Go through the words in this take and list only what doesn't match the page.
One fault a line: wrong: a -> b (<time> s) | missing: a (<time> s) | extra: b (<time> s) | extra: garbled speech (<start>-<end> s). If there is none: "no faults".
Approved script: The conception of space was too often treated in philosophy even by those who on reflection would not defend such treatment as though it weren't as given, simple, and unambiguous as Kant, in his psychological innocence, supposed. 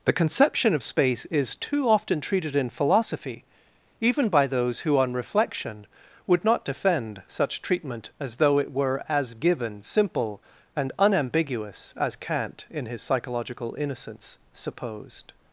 wrong: was -> is (1.3 s)
wrong: weren't -> were (8.7 s)